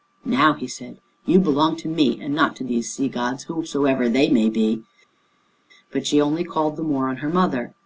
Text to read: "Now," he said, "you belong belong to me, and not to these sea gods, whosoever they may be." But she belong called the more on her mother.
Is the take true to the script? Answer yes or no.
no